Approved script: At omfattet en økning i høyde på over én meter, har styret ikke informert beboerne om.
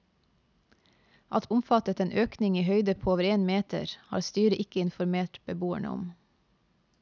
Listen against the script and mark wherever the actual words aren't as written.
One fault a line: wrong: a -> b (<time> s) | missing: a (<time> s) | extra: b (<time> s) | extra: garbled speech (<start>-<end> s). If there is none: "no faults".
no faults